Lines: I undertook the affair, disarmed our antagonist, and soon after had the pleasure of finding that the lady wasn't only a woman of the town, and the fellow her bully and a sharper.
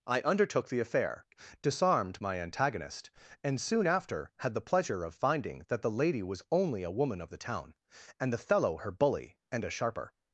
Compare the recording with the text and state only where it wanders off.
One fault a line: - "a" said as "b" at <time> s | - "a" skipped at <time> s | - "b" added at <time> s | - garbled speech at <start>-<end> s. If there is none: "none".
- "our" said as "my" at 2.2 s
- "wasn't" said as "was" at 6.2 s